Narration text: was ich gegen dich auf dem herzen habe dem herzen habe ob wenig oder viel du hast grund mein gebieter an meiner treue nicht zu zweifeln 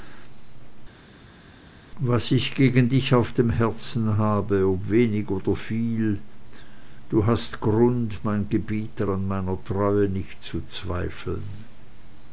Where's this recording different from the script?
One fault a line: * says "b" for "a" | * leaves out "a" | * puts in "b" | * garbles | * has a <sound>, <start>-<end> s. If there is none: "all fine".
* leaves out "dem herzen habe"